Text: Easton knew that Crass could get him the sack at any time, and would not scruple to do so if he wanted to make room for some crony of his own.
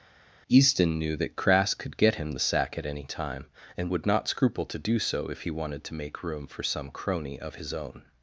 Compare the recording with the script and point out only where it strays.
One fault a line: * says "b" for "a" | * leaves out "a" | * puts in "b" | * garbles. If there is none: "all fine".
all fine